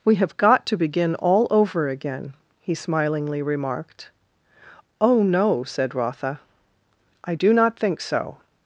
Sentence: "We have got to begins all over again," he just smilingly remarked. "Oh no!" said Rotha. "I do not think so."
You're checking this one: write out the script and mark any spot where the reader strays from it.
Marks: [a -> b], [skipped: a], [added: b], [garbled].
"We have got to [begins -> begin] all over again," he [skipped: just] smilingly remarked. "Oh no!" said Rotha. "I do not think so."